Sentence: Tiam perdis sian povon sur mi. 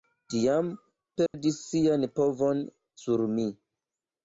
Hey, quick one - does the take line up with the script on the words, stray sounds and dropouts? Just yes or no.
no